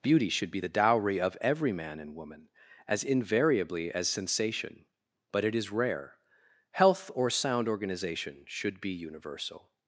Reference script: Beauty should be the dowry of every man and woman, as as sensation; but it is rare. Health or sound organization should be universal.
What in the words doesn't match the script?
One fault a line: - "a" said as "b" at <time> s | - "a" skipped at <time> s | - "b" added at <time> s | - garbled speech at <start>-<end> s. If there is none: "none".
- "invariably" added at 3.0 s